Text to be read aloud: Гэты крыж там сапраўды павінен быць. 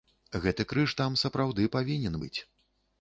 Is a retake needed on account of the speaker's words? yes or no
no